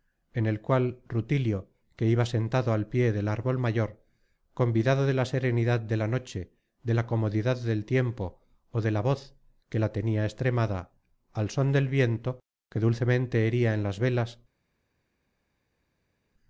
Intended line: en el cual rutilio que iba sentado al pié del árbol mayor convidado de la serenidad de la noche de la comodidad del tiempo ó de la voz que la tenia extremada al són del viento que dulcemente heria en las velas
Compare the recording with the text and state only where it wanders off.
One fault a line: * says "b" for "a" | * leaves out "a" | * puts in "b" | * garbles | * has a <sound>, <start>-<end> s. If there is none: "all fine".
all fine